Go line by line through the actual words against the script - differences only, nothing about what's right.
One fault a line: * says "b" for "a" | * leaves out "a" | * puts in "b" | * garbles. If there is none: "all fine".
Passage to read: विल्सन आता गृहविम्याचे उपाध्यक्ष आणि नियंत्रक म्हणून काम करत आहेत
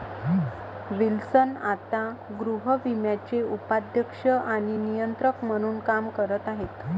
all fine